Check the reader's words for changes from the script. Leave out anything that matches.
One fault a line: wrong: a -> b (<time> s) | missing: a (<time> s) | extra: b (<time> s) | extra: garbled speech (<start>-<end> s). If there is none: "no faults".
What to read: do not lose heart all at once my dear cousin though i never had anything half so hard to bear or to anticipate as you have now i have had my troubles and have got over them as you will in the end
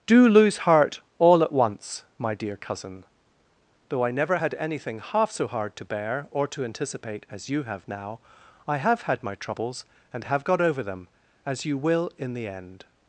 missing: not (0.3 s)